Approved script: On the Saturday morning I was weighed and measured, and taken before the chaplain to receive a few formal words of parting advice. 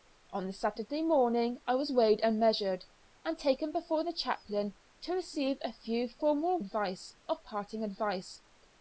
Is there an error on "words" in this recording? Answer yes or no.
yes